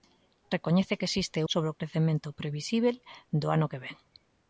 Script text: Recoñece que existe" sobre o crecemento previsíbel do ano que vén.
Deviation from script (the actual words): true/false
false